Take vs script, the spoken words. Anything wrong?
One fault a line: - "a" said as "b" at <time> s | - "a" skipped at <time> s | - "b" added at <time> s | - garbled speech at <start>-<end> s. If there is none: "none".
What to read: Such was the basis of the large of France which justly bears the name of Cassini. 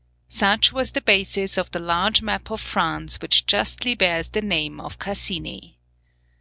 - "map" added at 2.2 s